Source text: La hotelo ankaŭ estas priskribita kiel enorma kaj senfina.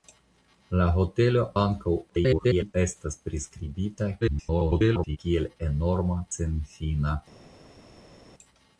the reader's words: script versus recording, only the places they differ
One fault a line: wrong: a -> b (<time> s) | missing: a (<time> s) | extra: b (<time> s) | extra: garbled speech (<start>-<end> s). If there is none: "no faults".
extra: garbled speech (2.1-2.7 s)
extra: garbled speech (4.2-5.2 s)
missing: kaj (6.2 s)